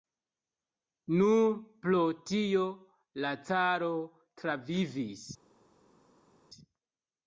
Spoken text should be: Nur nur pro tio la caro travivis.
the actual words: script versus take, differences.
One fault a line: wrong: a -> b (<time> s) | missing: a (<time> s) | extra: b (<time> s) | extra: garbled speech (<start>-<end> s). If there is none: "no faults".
missing: nur (1.5 s)